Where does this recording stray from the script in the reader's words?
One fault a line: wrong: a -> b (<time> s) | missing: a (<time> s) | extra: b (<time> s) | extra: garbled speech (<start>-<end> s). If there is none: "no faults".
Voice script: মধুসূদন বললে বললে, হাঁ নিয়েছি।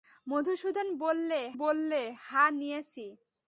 no faults